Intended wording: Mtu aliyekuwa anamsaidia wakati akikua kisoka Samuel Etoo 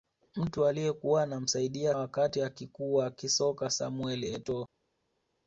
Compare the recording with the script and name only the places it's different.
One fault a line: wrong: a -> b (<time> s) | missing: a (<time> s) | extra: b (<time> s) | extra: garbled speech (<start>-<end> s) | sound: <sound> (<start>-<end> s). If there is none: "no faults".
no faults